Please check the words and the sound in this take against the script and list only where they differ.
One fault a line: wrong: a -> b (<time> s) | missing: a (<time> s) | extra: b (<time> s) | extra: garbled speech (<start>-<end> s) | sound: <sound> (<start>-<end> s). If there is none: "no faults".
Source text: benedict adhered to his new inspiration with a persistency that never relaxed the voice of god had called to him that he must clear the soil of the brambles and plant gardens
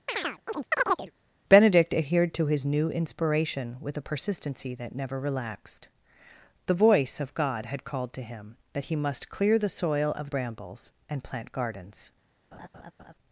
sound: chirp (0.1-1.1 s)
missing: the (10.3 s)
sound: laugh (12.5-13.1 s)